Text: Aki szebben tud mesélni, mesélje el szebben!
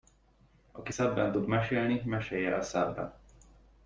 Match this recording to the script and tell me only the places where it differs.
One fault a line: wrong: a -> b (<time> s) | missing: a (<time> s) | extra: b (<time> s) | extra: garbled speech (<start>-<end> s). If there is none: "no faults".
no faults